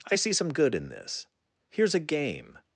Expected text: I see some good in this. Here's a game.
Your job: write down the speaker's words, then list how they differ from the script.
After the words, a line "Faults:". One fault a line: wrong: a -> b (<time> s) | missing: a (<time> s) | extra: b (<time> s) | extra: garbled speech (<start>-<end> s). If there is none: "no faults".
I see some good in this. Here's a game.
Faults:
no faults